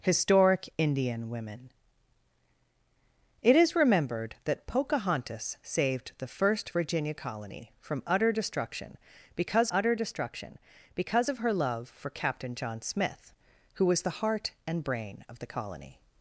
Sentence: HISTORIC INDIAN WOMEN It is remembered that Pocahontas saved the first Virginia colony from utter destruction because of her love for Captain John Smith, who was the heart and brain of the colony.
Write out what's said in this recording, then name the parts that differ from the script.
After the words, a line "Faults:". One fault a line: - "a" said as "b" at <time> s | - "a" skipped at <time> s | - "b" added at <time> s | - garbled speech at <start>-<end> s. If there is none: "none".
HISTORIC INDIAN WOMEN It is remembered that Pocahontas saved the first Virginia colony from utter destruction because utter destruction because of her love for Captain John Smith, who was the heart and brain of the colony.
Faults:
- "utter destruction because" added at 9.7 s